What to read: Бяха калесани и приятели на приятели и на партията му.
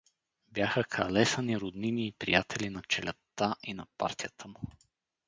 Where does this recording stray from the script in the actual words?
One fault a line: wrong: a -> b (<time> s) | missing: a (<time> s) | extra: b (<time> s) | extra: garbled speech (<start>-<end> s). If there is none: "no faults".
extra: роднини (1.6 s)
wrong: приятели -> челядта (2.8 s)